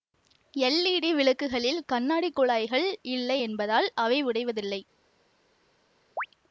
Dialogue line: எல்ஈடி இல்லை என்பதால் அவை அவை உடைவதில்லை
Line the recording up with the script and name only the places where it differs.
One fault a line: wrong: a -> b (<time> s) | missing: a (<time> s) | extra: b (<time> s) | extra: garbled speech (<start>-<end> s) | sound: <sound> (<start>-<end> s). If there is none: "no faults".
extra: விளக்குகளில் கண்ணாடி குழாய்கள் (1.1 s)
missing: அவை (4.2 s)
sound: chirp (6.2-6.3 s)